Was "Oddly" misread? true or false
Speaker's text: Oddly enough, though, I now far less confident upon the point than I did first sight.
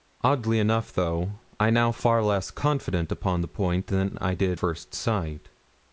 false